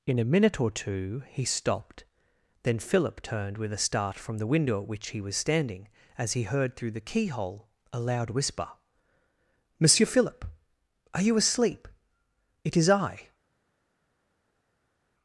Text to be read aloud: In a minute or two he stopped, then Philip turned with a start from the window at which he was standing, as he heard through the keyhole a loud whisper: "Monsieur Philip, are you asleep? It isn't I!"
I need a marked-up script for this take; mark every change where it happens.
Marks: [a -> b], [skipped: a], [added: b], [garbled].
In a minute or two he stopped, then Philip turned with a start from the window at which he was standing, as he heard through the keyhole a loud whisper: "Monsieur Philip, are you asleep? It [isn't -> is] I!"